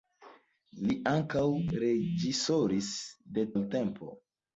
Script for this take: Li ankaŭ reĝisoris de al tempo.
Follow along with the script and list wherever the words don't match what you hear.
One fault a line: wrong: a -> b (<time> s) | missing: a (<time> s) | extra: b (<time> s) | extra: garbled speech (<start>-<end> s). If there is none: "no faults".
no faults